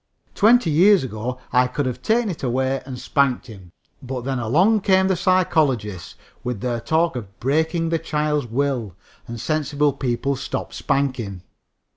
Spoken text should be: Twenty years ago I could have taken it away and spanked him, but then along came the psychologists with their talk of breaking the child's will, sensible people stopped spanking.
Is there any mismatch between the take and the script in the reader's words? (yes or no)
yes